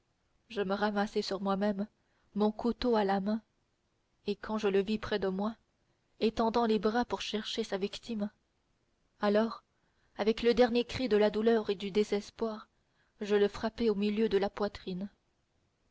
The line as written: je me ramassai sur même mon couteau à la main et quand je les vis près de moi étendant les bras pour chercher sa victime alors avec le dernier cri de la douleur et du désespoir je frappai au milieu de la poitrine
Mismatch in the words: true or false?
true